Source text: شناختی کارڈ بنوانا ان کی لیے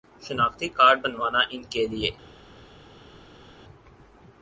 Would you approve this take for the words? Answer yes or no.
no